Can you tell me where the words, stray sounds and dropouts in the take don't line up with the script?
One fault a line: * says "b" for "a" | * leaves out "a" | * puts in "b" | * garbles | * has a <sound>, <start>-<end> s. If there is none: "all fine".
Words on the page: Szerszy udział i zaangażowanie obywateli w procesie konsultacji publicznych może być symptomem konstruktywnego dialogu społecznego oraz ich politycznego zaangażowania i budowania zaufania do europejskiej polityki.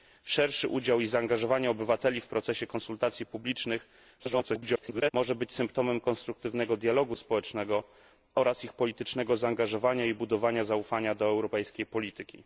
* garbles